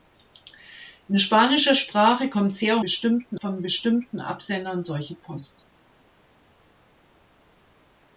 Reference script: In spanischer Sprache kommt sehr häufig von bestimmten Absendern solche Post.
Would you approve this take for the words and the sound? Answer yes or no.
no